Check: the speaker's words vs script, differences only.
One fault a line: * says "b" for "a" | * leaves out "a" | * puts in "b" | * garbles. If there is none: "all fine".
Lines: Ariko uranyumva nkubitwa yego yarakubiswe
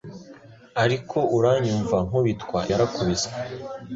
* leaves out "yego"